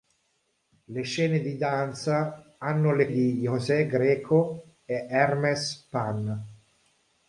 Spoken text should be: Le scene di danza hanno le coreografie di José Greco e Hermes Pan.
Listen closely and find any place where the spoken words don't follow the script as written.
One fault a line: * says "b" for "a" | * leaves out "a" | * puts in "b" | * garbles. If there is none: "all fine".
* leaves out "coreografie"